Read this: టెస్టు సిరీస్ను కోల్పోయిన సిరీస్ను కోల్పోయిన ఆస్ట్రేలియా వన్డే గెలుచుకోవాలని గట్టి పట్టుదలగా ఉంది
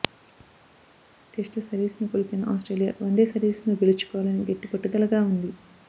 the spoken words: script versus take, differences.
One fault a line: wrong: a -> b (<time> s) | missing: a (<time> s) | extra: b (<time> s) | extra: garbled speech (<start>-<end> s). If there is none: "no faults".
missing: సిరీస్ను కోల్పోయిన (2.4 s)
extra: సిరీస్ను (3.3 s)